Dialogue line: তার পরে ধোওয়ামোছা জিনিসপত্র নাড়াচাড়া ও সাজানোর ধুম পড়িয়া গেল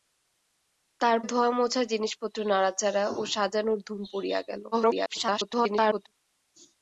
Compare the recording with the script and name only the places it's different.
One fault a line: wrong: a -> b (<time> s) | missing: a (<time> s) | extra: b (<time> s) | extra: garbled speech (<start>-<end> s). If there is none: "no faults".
missing: পরে (1.2 s)
extra: garbled speech (4.7-6.1 s)